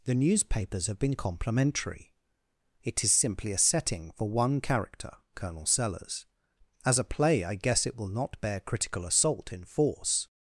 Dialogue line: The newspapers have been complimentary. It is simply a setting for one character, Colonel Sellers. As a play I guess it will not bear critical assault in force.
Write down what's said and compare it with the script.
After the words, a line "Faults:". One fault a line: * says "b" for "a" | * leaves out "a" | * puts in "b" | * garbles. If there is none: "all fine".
The newspapers have been complimentary. It is simply a setting for one character, Colonel Sellers. As a play I guess it will not bear critical assault in force.
Faults:
all fine